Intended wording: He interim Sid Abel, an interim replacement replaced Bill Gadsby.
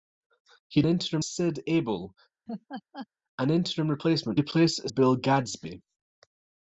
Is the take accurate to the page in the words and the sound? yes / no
no